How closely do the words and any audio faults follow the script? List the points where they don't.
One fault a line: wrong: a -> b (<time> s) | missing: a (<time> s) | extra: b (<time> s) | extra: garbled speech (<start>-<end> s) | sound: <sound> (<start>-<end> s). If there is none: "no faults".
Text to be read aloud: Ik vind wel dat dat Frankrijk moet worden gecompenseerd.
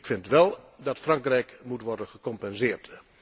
missing: dat (1.0 s)